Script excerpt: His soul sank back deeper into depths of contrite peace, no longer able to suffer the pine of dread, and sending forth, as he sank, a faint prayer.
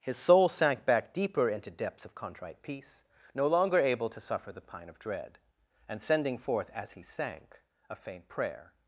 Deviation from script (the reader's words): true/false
false